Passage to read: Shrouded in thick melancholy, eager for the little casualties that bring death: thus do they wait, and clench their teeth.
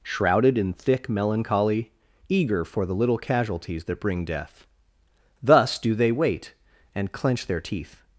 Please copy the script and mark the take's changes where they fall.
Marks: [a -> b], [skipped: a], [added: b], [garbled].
Shrouded in thick melancholy, eager for the little casualties that bring death: thus do they wait, and clench their teeth.